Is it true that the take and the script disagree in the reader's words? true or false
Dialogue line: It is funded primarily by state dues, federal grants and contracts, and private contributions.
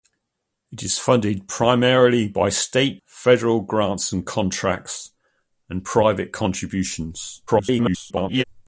true